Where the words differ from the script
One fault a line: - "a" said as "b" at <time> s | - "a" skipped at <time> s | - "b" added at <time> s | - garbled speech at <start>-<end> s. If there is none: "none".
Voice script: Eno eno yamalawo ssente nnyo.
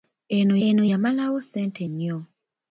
none